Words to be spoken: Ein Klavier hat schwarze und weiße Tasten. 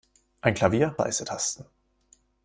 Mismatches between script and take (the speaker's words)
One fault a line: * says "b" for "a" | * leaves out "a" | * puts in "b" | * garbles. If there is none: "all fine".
* leaves out "hat schwarze und"